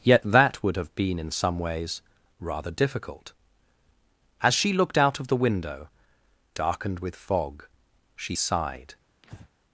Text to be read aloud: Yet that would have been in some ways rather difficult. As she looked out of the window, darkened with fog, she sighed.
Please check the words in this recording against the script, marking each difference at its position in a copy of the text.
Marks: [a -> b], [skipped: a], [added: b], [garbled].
Yet that would have been in some ways rather difficult. As she looked out of the window, darkened with fog, she sighed.